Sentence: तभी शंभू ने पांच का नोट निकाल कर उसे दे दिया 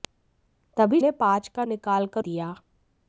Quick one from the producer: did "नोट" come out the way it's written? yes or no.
no